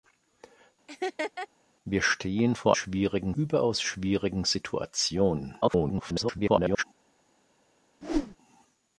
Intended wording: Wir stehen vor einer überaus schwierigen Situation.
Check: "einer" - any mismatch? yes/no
yes